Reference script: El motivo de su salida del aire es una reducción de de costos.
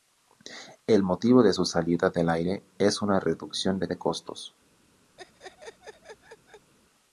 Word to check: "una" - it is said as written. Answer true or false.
true